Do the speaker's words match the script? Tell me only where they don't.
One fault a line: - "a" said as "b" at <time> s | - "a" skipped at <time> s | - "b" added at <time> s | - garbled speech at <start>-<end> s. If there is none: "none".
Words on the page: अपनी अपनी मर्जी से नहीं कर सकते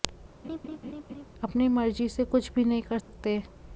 - "अपनी" skipped at 1.7 s
- "कुछ भी" added at 2.2 s